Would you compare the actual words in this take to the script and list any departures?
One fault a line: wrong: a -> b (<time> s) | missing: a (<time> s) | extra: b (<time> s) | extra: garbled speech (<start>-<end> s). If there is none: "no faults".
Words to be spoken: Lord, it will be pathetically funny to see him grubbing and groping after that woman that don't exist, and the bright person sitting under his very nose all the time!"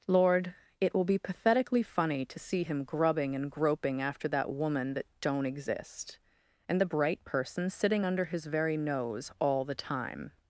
no faults